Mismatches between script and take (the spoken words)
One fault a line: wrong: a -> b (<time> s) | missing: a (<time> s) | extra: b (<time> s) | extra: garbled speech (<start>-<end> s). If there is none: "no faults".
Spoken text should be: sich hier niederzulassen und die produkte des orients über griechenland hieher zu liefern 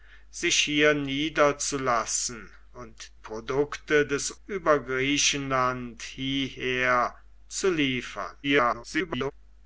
missing: die (3.1 s)
missing: orients (4.4 s)
extra: garbled speech (8.4-9.3 s)